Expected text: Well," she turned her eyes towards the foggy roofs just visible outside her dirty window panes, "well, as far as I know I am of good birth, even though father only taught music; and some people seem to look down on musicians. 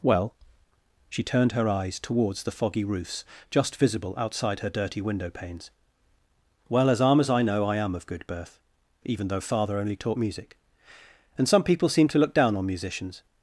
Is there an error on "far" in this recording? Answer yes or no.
yes